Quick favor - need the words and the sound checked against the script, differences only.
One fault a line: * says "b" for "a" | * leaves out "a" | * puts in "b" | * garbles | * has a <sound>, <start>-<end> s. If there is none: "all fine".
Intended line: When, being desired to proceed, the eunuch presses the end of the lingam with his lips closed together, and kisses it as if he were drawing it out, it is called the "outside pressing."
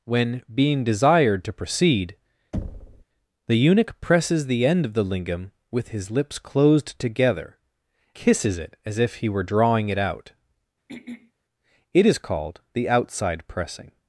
* has a thud, 2.5-3.0 s
* leaves out "and"
* has a throat clearing, 10.9-11.3 s